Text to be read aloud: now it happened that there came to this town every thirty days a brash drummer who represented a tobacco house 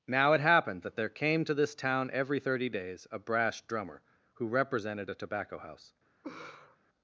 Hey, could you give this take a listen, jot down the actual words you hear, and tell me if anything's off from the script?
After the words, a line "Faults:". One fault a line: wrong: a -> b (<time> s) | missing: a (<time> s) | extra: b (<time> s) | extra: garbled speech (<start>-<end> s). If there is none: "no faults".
now it happened that there came to this town every thirty days a brash drummer who represented a tobacco house
Faults:
no faults